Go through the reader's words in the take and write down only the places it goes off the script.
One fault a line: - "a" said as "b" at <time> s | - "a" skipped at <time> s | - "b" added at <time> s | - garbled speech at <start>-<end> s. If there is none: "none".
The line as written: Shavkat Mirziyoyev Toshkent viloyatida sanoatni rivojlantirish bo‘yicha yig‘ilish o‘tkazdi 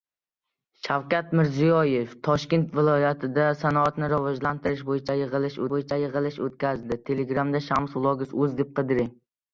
- "bo‘yicha yig‘ilish" added at 5.7 s